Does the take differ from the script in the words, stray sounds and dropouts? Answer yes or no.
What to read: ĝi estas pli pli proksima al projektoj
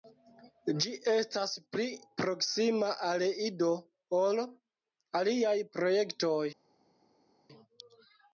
yes